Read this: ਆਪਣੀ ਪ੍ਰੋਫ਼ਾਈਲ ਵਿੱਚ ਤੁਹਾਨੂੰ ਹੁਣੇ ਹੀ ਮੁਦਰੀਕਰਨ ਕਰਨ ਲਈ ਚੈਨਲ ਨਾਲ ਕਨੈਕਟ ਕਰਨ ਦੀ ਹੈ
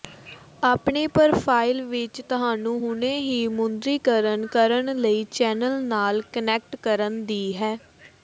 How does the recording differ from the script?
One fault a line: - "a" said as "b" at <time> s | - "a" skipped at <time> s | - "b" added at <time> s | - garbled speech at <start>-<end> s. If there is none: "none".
none